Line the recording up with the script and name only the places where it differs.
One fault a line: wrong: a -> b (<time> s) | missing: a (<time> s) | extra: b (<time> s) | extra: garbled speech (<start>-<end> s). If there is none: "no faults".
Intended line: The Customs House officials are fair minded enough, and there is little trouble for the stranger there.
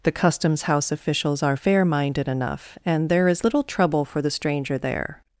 no faults